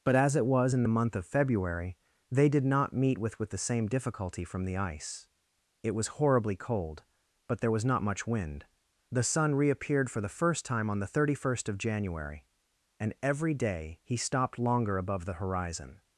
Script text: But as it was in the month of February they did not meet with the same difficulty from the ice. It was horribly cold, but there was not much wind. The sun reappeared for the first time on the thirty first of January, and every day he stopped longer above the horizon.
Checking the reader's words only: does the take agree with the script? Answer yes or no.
no